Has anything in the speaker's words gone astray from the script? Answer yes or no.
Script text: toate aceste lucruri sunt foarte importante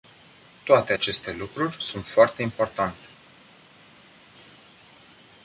no